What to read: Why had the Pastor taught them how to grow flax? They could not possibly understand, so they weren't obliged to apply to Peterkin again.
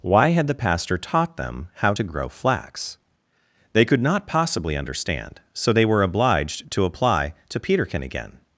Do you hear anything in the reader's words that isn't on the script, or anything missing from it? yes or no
yes